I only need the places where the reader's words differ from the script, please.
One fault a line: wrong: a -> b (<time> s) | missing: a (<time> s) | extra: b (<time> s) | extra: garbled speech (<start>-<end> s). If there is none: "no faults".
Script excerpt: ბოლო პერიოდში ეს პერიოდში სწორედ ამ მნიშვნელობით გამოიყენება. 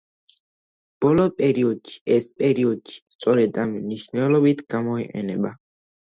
no faults